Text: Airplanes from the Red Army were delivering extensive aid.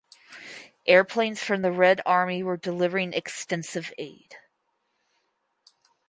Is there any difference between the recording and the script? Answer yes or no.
no